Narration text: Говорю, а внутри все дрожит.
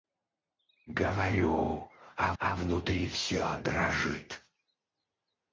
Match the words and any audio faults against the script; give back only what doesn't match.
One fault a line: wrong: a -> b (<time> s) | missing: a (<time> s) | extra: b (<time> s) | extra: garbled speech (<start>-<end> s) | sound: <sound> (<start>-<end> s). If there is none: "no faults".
extra: а (2.4 s)